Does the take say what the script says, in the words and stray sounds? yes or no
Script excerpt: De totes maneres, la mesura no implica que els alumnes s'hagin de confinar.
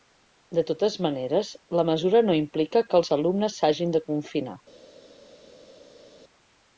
yes